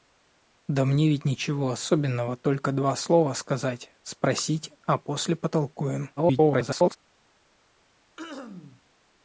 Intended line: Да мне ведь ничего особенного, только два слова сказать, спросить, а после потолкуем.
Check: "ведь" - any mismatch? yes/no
no